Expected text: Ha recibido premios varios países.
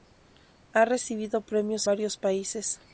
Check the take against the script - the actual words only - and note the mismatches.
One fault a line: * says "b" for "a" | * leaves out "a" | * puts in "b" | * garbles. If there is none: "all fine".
all fine